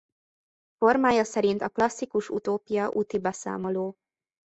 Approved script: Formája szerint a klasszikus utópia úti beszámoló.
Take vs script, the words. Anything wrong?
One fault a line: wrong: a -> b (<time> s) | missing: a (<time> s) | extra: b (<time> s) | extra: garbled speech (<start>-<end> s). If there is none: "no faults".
no faults